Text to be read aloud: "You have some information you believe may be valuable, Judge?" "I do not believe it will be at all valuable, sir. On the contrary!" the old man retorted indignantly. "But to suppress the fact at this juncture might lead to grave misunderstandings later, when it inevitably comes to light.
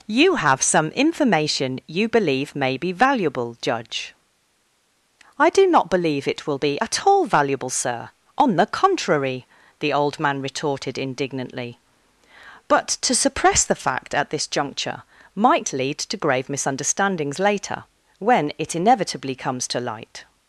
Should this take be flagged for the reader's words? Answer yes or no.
no